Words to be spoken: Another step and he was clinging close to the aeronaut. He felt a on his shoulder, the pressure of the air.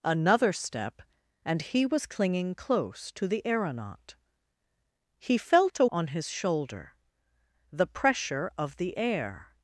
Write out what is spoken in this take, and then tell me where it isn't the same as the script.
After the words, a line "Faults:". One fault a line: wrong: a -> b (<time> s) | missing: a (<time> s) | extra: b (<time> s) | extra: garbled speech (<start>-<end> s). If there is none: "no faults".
Another step and he was clinging close to the aeronaut. He felt a on his shoulder, the pressure of the air.
Faults:
no faults